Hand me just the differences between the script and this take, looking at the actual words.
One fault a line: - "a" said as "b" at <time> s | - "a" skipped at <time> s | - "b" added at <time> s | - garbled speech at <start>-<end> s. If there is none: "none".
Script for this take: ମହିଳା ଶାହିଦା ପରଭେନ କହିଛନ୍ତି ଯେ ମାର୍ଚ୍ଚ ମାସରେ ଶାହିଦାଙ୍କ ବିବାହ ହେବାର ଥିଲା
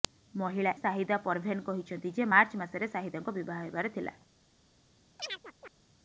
none